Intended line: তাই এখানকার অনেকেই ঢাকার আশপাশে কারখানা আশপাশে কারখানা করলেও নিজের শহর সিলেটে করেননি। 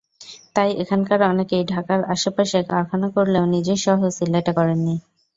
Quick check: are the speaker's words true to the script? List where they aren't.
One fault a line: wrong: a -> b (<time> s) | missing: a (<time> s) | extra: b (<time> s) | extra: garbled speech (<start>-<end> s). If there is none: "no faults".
missing: আশপাশে কারখানা (3.1 s)